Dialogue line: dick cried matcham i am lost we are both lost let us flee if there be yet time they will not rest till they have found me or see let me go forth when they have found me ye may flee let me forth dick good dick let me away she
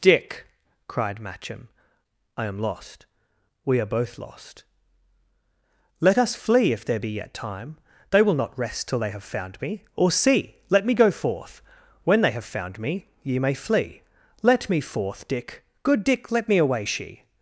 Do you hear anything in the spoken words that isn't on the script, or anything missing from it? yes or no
no